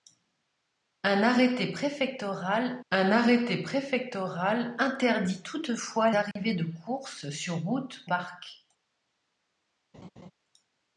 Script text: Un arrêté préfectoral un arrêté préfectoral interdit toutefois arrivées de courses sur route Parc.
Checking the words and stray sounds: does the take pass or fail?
fail